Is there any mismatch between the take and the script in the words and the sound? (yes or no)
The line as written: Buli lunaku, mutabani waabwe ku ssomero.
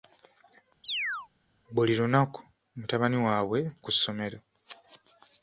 yes